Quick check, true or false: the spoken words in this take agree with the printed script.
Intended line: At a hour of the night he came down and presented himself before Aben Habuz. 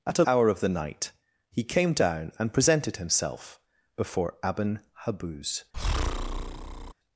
true